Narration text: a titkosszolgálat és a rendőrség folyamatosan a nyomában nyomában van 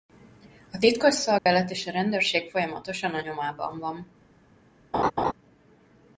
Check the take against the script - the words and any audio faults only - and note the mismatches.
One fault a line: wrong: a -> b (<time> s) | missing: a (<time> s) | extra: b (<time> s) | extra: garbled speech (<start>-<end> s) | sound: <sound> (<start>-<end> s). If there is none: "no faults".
sound: dropout (1.4-1.5 s)
missing: nyomában (3.8 s)
sound: laugh (4.9-5.3 s)